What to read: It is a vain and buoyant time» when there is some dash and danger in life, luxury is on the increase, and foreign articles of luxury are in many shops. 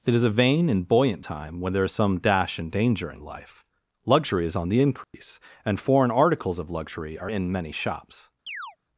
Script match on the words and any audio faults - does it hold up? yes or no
no